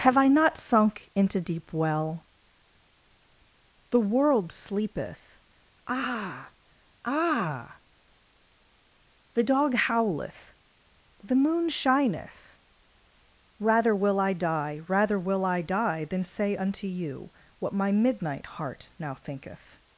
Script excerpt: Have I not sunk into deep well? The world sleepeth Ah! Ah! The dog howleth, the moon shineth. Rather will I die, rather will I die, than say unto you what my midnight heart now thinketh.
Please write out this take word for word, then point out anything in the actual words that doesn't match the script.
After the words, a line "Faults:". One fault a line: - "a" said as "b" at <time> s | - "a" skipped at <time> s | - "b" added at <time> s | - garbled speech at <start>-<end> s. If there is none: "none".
Have I not sunk into deep well? The world sleepeth Ah! Ah! The dog howleth, the moon shineth. Rather will I die, rather will I die, than say unto you what my midnight heart now thinketh.
Faults:
none